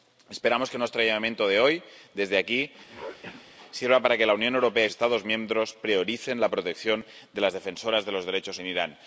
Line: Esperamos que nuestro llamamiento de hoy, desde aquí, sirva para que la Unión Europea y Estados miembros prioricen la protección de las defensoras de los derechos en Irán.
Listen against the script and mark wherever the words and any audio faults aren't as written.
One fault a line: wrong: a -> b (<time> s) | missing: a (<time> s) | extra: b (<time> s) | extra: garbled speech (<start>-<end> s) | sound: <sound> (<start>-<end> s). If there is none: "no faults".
sound: throat clearing (2.9-3.4 s)